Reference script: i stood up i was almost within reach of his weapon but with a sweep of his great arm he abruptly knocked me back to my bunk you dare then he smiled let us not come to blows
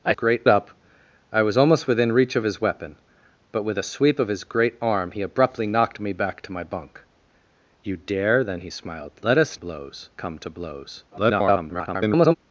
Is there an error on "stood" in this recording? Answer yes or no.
yes